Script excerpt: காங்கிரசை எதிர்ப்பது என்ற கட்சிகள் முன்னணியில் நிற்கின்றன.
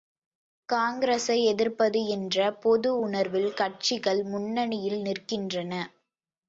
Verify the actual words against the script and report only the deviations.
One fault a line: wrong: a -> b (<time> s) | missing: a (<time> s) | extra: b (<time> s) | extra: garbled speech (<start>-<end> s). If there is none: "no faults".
extra: பொது உணர்வில் (2.6 s)